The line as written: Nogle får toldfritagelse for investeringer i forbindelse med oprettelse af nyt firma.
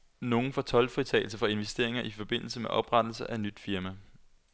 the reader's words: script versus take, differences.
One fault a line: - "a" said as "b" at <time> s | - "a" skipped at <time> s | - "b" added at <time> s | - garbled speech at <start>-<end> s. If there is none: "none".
none